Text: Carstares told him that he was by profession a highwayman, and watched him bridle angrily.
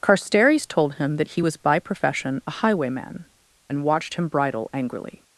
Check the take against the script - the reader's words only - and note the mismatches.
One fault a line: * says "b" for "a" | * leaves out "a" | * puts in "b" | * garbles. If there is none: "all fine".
all fine